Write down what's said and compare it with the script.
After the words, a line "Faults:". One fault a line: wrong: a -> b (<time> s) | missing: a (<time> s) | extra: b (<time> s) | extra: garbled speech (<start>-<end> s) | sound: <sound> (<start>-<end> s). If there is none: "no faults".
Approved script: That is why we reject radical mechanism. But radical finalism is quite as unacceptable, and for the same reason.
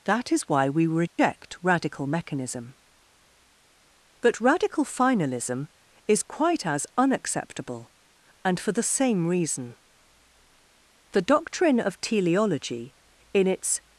That is why we reject radical mechanism. But radical finalism is quite as unacceptable, and for the same reason. The doctrine of teleology, in its
Faults:
sound: dropout (1.1-1.2 s)
extra: The doctrine of teleology in its (11.1 s)